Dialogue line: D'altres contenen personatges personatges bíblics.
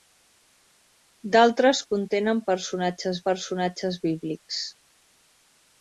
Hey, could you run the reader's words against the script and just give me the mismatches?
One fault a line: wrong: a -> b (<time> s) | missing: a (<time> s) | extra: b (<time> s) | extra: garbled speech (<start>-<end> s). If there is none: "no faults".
no faults